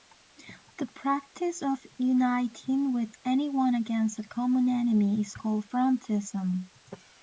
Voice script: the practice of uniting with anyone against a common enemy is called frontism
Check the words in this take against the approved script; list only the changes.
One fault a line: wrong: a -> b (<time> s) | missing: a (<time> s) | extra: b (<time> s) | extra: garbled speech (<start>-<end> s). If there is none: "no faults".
no faults